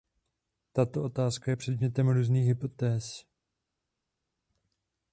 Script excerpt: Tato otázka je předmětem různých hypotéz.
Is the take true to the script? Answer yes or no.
yes